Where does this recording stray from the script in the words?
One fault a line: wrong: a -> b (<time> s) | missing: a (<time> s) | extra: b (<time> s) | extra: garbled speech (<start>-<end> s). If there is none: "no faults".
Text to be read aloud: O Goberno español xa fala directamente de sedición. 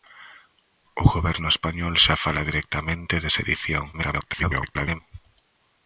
extra: garbled speech (3.9-5.0 s)